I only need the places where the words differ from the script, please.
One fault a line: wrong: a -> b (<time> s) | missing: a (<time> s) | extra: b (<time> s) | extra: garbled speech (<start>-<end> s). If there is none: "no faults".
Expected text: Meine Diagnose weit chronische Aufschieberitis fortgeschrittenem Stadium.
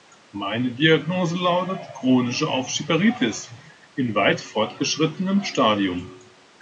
wrong: weit -> lautet (1.4 s)
extra: in weit (4.0 s)